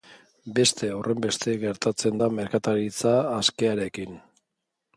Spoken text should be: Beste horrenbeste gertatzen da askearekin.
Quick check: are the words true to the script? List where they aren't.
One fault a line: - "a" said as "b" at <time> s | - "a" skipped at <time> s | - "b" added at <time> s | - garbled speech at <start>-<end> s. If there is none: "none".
- "merkataritza" added at 2.4 s